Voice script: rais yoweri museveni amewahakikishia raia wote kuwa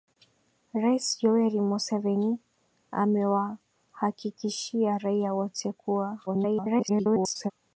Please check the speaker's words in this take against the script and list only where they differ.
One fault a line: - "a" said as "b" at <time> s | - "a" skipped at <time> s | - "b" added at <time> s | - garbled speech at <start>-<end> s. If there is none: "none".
- garbled speech at 6.3-7.5 s